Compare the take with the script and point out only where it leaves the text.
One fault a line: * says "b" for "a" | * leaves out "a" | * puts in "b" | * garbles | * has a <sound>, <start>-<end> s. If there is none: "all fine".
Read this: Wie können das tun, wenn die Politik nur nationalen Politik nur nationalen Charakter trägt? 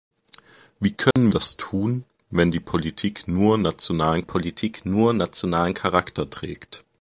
* has a dropout, 1.1-1.2 s